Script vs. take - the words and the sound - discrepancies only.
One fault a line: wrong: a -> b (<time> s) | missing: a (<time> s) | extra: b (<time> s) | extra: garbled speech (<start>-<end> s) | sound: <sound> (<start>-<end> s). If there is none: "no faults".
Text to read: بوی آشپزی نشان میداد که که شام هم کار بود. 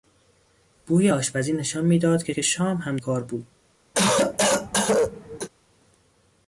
sound: cough (3.9-5.5 s)